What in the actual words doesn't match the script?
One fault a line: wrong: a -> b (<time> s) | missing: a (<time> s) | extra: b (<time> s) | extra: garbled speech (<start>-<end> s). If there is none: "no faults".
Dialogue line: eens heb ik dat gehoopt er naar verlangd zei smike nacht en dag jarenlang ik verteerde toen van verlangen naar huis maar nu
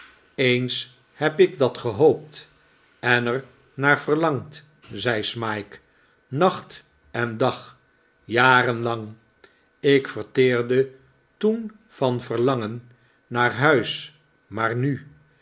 extra: en (3.0 s)